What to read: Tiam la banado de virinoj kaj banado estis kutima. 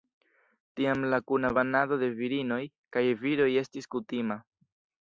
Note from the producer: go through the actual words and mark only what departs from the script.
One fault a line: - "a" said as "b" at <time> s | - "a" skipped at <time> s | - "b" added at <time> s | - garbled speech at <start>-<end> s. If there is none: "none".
- "kuna" added at 1.3 s
- "banado" said as "viroj" at 3.3 s